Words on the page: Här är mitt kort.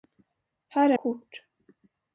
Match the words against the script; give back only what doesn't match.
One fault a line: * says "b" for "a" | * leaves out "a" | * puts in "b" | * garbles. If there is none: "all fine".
* leaves out "mitt"